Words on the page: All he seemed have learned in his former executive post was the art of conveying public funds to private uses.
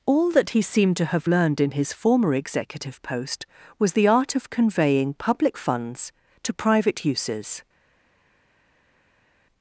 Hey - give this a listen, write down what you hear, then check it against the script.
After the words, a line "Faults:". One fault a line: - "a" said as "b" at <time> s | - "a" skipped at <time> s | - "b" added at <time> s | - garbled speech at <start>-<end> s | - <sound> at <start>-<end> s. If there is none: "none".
All that he seemed to have learned in his former executive post was the art of conveying public funds to private uses.
Faults:
- "that" added at 0.3 s
- "to" added at 1.0 s